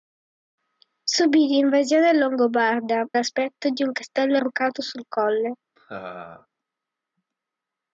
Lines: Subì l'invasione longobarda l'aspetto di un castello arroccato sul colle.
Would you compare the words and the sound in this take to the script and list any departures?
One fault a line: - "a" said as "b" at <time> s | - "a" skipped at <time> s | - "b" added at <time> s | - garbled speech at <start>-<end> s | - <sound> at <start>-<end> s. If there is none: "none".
- laugh at 5.8-6.5 s